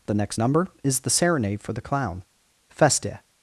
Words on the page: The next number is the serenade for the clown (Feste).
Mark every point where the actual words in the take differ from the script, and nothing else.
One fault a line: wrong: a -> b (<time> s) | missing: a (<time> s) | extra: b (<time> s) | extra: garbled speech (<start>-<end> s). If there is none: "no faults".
no faults